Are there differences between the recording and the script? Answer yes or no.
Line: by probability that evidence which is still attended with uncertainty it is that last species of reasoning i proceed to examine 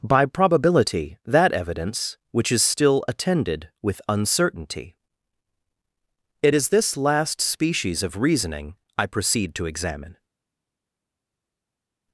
yes